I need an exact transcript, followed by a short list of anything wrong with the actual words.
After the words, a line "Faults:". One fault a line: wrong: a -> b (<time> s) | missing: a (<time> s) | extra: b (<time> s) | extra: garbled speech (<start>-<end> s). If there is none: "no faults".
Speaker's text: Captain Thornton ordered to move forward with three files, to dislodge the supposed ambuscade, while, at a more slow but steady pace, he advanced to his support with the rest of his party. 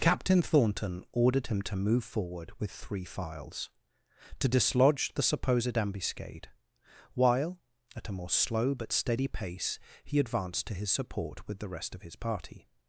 Captain Thornton ordered him to move forward with three files, to dislodge the supposed ambuscade, while, at a more slow but steady pace, he advanced to his support with the rest of his party.
Faults:
extra: him (1.5 s)